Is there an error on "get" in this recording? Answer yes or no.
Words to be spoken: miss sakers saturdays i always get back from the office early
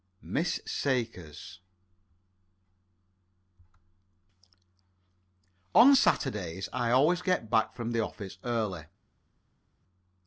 no